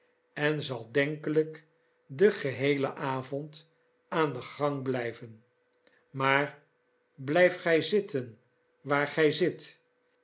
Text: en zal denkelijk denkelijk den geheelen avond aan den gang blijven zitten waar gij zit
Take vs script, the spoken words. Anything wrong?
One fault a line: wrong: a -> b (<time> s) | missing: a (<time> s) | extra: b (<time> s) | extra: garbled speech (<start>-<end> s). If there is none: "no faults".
missing: denkelijk (1.6 s)
extra: maar blijf gij (6.1 s)